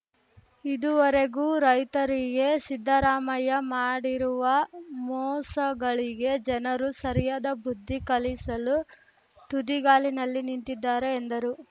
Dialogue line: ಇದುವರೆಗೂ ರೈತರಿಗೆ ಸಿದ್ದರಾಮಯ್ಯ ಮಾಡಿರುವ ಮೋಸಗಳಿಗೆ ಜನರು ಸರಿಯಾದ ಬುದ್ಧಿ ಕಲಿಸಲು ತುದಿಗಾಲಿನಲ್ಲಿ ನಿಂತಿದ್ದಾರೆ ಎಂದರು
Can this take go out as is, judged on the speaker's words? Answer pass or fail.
pass